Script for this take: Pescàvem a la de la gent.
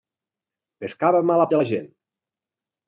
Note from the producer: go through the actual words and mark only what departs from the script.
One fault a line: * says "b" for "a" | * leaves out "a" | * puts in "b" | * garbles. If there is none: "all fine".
all fine